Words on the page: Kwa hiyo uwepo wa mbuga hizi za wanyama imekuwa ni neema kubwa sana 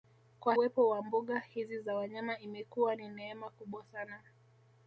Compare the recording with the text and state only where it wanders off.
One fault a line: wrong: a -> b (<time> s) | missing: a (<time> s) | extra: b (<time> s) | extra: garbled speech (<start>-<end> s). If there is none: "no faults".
missing: hiyo (0.6 s)